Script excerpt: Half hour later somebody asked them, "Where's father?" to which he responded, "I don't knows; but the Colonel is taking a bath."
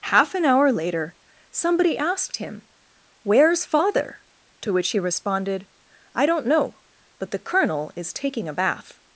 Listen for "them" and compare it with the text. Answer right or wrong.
wrong